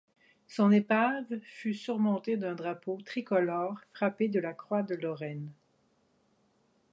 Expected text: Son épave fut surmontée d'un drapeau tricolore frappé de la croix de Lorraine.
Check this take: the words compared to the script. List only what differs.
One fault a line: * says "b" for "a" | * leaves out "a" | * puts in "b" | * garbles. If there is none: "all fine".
all fine